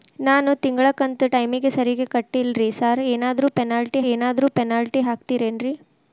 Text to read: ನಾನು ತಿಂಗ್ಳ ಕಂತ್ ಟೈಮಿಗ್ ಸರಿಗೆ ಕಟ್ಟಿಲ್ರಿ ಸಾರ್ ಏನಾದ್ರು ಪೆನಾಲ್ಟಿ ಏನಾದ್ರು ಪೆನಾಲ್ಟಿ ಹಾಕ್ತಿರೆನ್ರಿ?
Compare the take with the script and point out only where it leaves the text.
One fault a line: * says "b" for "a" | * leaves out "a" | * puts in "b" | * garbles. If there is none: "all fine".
all fine